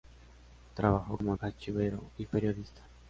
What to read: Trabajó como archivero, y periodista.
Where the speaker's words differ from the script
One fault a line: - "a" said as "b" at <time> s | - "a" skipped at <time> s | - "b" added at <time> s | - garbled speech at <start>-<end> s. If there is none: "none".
none